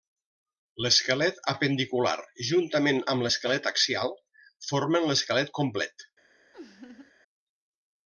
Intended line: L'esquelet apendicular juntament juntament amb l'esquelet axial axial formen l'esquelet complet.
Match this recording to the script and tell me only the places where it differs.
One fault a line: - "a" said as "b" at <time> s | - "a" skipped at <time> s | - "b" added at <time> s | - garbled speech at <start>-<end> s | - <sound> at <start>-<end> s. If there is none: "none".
- "juntament" skipped at 3.0 s
- "axial" skipped at 4.1 s
- laugh at 6.5-7.1 s